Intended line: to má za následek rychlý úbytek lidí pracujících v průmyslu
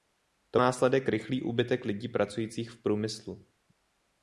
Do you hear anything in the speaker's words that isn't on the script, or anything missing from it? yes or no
yes